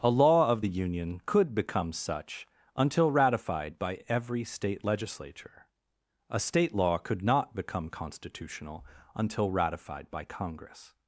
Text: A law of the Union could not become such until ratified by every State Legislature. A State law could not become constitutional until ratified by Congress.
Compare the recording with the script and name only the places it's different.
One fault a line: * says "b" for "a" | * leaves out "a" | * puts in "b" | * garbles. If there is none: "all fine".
* leaves out "not"